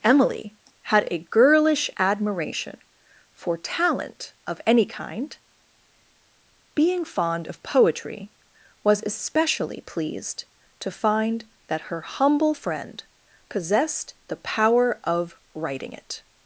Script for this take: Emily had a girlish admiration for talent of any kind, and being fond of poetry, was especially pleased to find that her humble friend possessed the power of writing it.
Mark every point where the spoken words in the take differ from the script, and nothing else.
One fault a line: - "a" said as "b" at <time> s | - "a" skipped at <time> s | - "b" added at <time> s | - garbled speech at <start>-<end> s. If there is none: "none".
- "and" skipped at 5.4 s